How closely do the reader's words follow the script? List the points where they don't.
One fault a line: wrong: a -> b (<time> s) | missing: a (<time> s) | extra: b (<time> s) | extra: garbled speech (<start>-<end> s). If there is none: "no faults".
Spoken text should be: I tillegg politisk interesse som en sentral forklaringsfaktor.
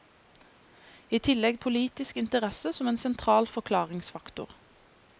no faults